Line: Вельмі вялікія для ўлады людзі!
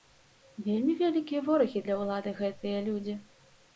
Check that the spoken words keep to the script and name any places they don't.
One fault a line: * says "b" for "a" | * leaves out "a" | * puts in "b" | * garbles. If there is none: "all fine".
* puts in "ворагі"
* puts in "гэтыя"